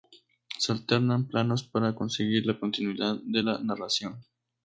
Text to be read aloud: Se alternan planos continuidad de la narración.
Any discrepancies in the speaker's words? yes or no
yes